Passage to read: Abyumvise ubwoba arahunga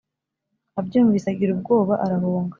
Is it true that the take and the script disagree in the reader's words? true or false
true